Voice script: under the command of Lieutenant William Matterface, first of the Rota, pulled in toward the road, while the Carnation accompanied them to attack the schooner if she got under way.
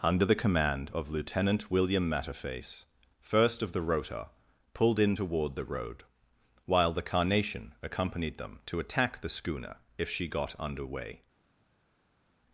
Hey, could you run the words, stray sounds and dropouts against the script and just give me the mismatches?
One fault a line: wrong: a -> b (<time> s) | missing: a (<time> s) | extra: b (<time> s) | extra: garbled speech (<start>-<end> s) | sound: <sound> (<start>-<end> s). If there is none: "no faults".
no faults